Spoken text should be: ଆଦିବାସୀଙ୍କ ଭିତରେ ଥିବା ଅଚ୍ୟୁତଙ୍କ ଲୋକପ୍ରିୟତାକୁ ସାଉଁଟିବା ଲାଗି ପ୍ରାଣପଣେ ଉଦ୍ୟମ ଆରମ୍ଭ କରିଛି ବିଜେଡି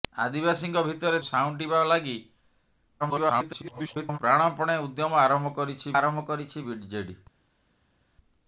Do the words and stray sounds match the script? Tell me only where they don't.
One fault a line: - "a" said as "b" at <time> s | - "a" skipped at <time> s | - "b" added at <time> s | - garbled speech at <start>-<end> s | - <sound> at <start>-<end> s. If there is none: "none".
- "ଥିବା ଅଚ୍ୟୁତଙ୍କ ଲୋକପ୍ରିୟତାକୁ" skipped at 1.2 s
- garbled speech at 3.0-4.2 s
- "ଆରମ୍ଭ କରିଛି" added at 5.9 s